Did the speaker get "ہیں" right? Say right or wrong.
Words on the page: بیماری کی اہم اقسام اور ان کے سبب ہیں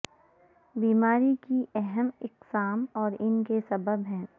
right